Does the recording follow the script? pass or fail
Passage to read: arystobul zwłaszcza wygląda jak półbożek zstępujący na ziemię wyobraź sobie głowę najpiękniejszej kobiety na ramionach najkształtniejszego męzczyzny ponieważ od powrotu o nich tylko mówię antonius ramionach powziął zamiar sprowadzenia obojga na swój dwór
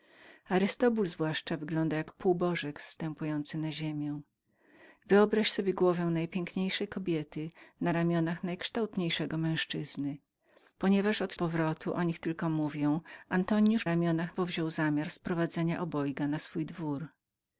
pass